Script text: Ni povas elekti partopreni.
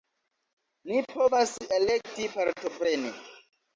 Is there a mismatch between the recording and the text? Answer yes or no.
no